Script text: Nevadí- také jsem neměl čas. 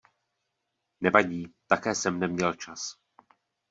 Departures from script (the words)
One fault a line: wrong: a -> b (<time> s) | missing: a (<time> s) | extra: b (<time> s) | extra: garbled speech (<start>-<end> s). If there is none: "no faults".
no faults